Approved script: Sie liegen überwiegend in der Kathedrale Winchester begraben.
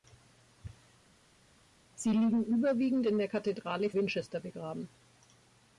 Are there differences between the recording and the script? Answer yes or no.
no